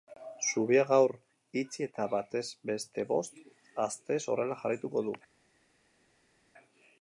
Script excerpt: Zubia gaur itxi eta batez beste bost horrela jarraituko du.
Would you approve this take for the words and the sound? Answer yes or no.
no